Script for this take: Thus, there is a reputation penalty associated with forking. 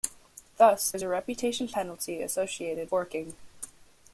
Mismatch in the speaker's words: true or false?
true